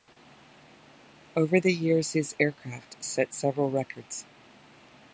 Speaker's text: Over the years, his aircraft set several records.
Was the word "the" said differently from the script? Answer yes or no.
no